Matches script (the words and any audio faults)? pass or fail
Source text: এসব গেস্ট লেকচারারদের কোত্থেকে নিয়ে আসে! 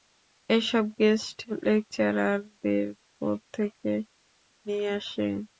pass